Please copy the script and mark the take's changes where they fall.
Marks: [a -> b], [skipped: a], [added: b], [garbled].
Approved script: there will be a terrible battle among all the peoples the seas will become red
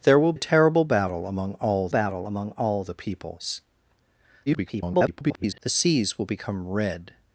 there will [skipped: be] a terrible battle among all [added: battle among all] the peoples [garbled] the seas will become red